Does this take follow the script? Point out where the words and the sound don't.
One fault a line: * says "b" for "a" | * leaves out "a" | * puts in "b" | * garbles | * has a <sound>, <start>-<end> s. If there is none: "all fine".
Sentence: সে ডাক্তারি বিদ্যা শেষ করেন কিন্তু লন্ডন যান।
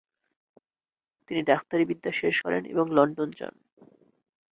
* says "তিনি" for "সে"
* says "এবং" for "কিন্তু"